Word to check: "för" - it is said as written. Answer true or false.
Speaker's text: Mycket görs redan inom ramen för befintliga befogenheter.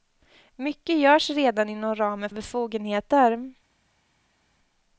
false